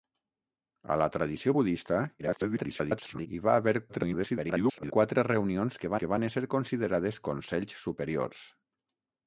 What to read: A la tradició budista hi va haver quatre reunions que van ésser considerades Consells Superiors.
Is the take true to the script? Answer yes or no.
no